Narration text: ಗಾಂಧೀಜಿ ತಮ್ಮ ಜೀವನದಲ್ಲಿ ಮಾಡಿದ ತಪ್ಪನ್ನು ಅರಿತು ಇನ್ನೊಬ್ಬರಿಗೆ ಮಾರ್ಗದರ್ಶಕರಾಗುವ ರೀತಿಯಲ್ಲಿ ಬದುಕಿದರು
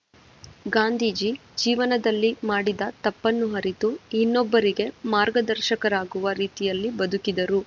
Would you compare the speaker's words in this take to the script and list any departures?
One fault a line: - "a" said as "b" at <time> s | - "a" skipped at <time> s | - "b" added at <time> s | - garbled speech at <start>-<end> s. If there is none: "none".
- "ತಮ್ಮ" skipped at 1.3 s